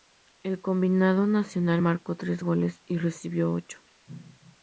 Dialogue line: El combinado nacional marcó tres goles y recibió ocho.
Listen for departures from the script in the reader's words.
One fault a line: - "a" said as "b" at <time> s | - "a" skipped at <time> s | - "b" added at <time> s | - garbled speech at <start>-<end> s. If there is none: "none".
none